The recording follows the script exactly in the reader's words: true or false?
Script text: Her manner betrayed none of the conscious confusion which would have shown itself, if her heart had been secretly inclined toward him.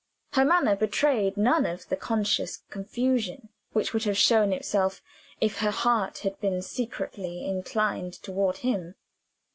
true